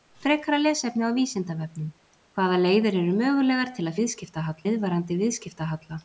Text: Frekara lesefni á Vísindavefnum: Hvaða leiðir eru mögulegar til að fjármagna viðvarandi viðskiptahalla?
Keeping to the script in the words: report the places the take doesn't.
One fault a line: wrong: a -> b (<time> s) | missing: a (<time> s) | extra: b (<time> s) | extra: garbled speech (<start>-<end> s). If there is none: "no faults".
wrong: fjármagna -> viðskiptahalla (4.0 s)